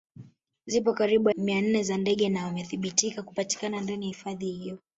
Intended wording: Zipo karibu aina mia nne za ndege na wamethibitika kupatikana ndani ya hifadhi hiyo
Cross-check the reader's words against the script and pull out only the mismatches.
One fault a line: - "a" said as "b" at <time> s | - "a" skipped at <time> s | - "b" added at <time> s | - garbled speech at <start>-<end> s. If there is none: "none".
- "aina" skipped at 1.3 s